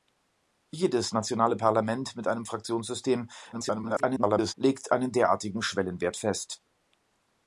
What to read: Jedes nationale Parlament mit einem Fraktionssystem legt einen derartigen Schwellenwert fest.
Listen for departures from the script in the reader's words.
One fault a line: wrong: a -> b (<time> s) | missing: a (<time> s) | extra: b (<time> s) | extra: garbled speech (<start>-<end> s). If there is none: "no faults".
extra: garbled speech (3.5-4.5 s)